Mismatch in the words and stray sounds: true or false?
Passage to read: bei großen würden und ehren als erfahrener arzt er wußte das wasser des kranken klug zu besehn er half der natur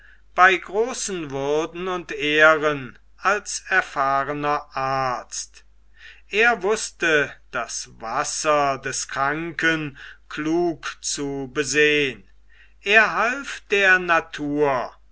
false